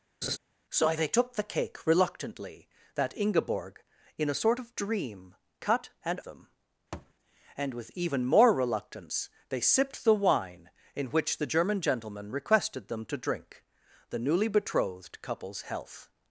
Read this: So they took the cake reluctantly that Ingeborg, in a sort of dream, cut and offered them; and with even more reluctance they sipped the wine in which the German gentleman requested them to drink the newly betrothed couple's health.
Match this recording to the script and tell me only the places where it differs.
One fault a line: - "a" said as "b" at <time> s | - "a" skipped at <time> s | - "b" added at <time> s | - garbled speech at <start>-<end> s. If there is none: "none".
- "offered" skipped at 6.2 s